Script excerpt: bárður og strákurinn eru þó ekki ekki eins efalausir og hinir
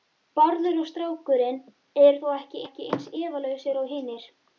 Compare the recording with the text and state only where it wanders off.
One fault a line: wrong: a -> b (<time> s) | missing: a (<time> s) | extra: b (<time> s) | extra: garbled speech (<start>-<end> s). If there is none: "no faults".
no faults